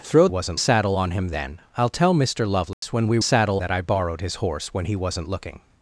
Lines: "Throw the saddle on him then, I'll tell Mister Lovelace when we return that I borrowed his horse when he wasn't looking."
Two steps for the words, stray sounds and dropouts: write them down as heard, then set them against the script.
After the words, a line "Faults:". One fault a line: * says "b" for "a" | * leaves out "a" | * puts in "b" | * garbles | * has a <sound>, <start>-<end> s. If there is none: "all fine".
"Throw wasn't saddle on him then, I'll tell Mister Lovelace when we saddle that I borrowed his horse when he wasn't looking."
Faults:
* says "wasn't" for "the"
* has a dropout, 2.7-2.8 s
* says "saddle" for "return"